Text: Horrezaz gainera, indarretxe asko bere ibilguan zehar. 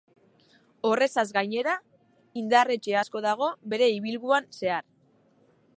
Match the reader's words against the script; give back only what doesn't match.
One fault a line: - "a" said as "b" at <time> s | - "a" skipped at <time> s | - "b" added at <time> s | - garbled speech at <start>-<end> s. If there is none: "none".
- "dago" added at 3.3 s